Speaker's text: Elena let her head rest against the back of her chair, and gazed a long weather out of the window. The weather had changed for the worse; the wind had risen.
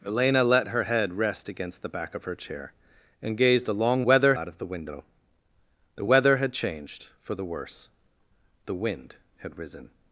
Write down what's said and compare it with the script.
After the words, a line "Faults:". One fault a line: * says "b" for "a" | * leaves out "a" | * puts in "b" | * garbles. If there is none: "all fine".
Elena let her head rest against the back of her chair, and gazed a long weather out of the window. The weather had changed for the worse; the wind had risen.
Faults:
all fine